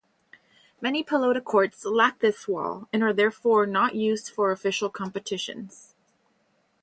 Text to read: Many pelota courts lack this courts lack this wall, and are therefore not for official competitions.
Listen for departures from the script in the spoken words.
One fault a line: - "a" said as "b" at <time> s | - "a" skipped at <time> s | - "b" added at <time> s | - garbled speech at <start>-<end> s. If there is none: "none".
- "courts lack this" skipped at 2.5 s
- "used" added at 3.9 s